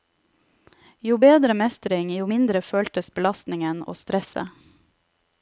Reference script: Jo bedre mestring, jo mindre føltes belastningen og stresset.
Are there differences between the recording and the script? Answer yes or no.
no